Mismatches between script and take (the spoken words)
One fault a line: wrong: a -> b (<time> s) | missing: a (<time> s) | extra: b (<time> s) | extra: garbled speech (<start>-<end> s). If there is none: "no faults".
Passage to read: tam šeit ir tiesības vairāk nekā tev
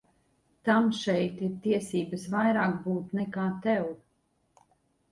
extra: būt (2.9 s)